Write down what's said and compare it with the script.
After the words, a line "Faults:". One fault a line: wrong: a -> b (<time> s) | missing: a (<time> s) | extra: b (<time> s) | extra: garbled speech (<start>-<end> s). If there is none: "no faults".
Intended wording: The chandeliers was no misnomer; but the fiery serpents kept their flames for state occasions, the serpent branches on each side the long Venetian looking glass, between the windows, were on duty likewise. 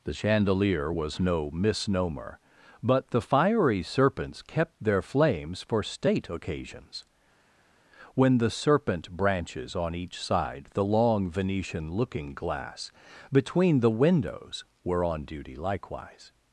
The chandelier was no misnomer; but the fiery serpents kept their flames for state occasions, when the serpent branches on each side the long Venetian looking glass, between the windows, were on duty likewise.
Faults:
wrong: chandeliers -> chandelier (0.1 s)
extra: when (8.1 s)